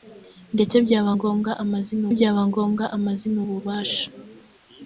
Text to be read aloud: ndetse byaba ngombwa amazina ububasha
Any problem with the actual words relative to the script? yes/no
yes